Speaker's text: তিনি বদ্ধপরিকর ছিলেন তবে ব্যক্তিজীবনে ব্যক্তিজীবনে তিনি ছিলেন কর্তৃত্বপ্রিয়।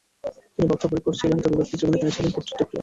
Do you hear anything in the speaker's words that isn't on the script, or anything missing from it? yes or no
yes